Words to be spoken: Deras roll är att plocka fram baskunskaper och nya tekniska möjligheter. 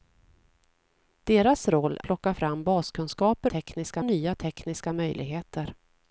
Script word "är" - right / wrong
wrong